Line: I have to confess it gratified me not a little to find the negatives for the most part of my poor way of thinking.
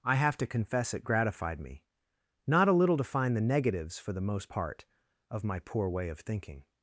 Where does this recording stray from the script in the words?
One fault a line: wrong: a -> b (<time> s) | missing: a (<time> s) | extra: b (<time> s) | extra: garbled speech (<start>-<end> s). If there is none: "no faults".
no faults